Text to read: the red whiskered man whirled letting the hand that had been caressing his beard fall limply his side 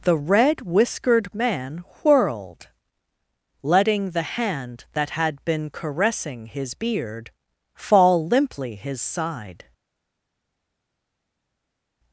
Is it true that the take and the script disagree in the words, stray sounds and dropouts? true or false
false